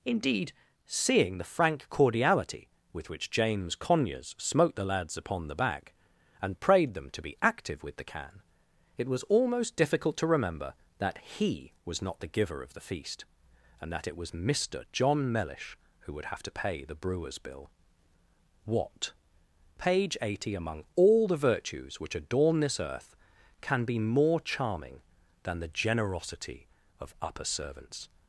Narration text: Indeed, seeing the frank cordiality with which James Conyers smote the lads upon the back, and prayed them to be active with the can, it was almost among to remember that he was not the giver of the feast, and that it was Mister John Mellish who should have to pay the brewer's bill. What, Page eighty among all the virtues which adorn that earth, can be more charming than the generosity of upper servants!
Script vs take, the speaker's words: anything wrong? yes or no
yes